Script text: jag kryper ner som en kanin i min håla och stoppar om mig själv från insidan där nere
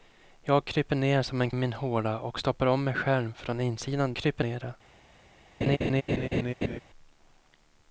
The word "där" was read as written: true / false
false